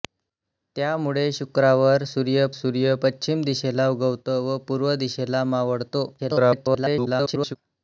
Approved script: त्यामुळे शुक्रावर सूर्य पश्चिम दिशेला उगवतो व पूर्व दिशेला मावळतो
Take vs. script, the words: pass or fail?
fail